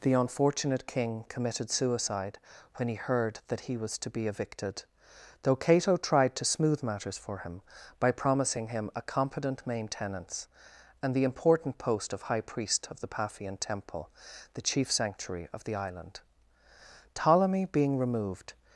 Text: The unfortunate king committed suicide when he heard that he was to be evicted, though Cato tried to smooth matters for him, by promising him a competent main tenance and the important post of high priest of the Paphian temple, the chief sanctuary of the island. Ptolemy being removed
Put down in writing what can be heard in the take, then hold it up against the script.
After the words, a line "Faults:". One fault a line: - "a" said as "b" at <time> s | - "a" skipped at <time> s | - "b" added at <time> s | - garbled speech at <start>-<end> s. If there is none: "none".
The unfortunate king committed suicide when he heard that he was to be evicted, though Cato tried to smooth matters for him, by promising him a competent main tenance and the important post of high priest of the Paphian temple, the chief sanctuary of the island. Ptolemy being removed
Faults:
none